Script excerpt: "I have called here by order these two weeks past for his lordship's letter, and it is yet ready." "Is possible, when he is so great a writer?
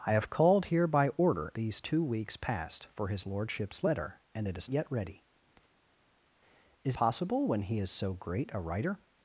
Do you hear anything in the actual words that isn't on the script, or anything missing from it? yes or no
no